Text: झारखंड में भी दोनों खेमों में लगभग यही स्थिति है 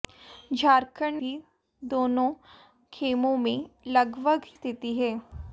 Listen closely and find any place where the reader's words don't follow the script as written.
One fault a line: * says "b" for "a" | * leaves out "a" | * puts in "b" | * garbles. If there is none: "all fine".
* leaves out "में"
* leaves out "यही"